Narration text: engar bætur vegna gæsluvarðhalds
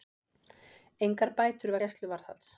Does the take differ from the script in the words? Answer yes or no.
yes